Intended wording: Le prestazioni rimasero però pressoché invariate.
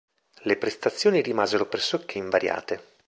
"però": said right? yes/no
no